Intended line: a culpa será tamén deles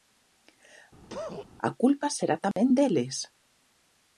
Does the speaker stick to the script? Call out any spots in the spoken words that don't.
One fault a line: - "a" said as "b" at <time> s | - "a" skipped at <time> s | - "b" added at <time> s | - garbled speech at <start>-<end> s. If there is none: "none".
none